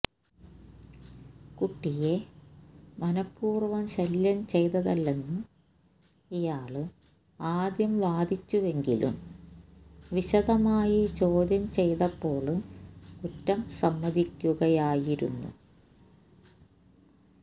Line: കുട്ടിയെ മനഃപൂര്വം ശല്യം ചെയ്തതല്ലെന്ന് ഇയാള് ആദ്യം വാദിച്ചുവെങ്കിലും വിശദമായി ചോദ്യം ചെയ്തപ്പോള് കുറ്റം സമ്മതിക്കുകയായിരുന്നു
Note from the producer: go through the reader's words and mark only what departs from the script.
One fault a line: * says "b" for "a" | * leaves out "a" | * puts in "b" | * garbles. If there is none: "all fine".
all fine